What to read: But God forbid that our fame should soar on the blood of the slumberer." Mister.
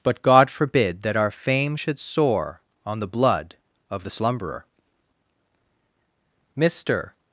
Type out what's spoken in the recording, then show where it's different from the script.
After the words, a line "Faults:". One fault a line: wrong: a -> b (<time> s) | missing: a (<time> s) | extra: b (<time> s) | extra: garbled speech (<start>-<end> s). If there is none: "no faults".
But God forbid that our fame should soar on the blood of the slumberer." Mister.
Faults:
no faults